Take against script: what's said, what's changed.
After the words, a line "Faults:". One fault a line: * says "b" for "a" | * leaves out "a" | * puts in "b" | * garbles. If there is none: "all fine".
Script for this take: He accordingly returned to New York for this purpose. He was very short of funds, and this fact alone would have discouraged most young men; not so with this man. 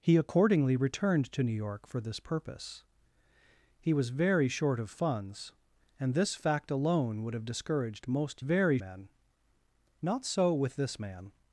He accordingly returned to New York for this purpose. He was very short of funds, and this fact alone would have discouraged most very men; not so with this man.
Faults:
* says "very" for "young"